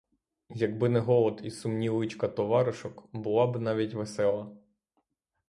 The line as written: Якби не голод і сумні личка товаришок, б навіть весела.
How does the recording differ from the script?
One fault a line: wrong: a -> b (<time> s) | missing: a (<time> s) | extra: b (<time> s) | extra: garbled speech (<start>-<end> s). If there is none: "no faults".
extra: була (3.1 s)